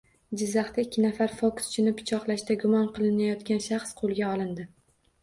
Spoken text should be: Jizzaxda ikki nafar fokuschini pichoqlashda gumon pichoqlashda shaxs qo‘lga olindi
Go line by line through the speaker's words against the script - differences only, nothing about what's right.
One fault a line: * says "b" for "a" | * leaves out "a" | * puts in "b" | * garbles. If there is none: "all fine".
* says "qilinayotgan" for "pichoqlashda"